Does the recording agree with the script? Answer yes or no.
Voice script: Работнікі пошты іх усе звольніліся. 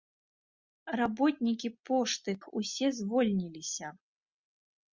yes